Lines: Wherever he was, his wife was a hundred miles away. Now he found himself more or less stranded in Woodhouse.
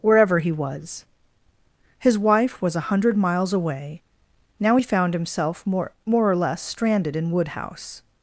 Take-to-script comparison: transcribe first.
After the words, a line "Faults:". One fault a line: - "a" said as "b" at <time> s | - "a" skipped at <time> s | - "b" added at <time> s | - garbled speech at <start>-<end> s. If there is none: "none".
Wherever he was, his wife was a hundred miles away. Now he found himself more more or less stranded in Woodhouse.
Faults:
- "more" added at 6.0 s